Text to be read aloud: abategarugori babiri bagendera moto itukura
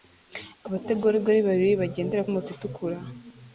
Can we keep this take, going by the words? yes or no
yes